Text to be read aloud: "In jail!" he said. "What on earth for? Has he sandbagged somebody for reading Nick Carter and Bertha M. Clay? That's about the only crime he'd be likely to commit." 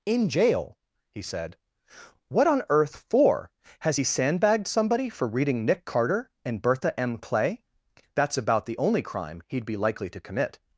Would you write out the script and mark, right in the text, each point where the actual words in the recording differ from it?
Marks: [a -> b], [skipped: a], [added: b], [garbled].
"In jail!" he said. "What on earth for? Has he sandbagged somebody for reading Nick Carter and Bertha M. Clay? That's about the only crime he'd be likely to commit."